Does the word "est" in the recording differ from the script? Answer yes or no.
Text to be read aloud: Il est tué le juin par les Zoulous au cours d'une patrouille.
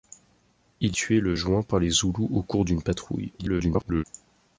yes